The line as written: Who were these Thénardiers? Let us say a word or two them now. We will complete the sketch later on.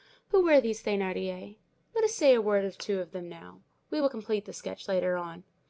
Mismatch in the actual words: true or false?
true